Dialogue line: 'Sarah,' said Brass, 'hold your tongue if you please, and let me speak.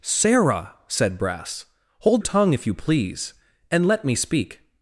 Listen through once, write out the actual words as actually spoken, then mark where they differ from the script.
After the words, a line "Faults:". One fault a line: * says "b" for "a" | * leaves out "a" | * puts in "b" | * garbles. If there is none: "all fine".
'Sarah,' said Brass, 'hold tongue if you please, and let me speak.
Faults:
* leaves out "your"